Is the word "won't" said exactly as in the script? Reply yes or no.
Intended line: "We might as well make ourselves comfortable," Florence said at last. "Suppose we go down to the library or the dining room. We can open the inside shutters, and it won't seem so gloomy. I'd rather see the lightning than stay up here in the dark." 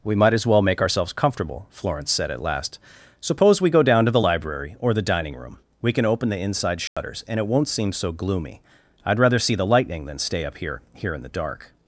yes